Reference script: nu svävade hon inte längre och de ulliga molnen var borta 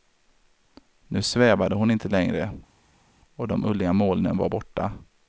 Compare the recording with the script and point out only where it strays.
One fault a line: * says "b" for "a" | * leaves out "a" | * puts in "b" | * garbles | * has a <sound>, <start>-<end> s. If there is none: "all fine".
all fine